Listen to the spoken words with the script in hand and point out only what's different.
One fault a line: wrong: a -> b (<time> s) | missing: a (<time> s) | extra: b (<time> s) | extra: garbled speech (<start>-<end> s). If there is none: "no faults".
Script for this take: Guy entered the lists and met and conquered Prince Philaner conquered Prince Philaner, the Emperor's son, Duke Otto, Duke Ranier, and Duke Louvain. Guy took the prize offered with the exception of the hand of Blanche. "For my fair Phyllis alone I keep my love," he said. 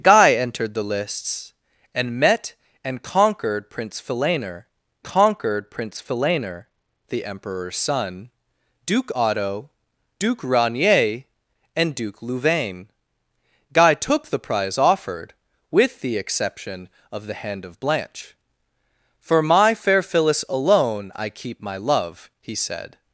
no faults